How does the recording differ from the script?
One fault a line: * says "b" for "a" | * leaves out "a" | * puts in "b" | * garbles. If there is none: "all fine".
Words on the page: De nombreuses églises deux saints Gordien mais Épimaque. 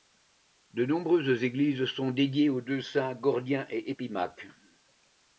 * puts in "sont dédiées aux"
* says "et" for "mais"